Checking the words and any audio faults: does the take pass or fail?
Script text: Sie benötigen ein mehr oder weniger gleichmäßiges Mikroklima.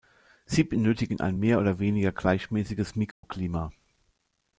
fail